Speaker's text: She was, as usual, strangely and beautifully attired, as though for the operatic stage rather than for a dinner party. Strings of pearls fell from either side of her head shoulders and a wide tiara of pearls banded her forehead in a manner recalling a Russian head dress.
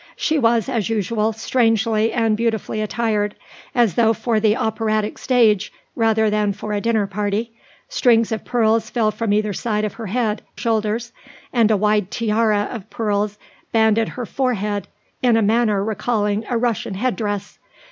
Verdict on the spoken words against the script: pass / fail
pass